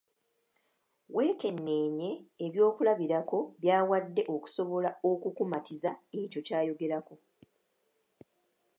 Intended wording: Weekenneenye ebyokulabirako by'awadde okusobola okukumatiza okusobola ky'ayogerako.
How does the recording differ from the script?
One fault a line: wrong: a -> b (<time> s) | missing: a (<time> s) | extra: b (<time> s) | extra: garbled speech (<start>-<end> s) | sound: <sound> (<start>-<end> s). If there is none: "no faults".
wrong: okusobola -> ekyo (6.2 s)